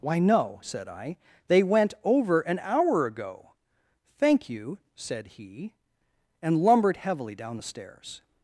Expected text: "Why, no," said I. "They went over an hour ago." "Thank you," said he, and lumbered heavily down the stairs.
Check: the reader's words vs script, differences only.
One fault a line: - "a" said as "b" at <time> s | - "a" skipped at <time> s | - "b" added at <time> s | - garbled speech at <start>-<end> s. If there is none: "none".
none